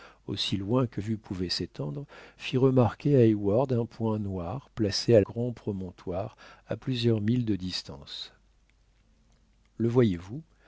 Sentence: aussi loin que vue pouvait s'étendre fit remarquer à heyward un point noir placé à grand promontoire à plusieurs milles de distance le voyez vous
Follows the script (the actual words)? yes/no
yes